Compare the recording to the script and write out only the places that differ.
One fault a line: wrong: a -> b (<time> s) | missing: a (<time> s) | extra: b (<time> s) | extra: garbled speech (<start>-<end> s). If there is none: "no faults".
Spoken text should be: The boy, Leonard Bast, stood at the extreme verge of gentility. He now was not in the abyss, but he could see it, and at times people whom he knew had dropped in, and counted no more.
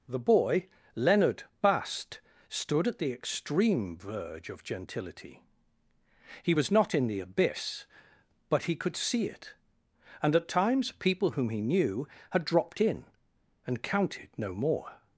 missing: now (6.5 s)